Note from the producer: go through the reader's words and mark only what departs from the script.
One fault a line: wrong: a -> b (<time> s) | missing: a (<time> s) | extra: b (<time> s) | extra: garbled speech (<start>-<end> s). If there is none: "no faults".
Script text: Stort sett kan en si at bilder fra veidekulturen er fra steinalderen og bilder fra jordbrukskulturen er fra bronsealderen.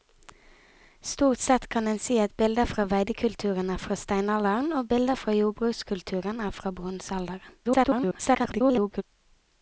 extra: garbled speech (7.6-9.0 s)